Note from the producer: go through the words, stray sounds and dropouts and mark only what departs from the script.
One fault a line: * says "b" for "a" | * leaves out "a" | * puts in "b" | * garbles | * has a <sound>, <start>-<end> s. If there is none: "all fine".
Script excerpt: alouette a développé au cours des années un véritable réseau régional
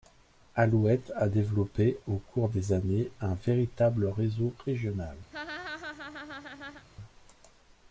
* has a laugh, 5.3-6.9 s